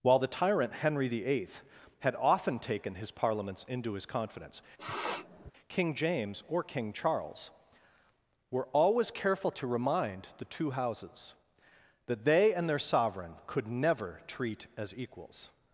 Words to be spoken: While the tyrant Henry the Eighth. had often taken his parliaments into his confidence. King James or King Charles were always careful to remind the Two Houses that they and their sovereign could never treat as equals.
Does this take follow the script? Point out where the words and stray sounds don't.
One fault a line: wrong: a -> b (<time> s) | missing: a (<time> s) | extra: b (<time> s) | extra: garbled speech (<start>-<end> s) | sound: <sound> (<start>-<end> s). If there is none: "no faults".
sound: sniff (4.8-5.5 s)